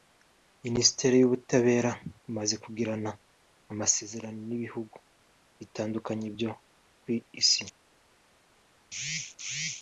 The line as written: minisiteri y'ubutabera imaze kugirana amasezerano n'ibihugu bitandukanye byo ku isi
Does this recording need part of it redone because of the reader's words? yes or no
no